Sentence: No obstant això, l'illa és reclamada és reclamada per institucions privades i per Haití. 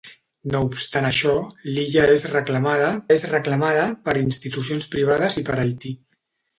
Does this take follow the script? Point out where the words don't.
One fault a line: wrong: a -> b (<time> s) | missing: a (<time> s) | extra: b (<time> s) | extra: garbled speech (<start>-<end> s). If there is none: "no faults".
no faults